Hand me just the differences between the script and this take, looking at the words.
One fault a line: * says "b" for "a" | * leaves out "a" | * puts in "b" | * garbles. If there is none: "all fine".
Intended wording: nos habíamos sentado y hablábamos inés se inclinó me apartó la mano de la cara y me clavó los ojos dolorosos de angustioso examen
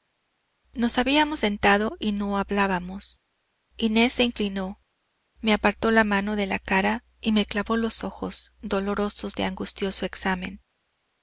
* puts in "no"